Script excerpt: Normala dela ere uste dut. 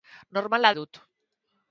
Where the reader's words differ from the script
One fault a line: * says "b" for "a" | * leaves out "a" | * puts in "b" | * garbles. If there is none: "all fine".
* leaves out "dela ere uste"